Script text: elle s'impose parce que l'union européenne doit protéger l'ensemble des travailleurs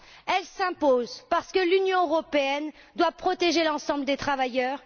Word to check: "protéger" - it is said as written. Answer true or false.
true